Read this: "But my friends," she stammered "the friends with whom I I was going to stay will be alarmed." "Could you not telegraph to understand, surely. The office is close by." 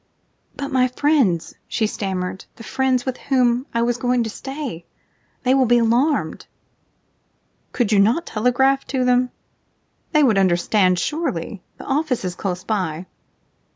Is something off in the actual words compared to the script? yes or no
yes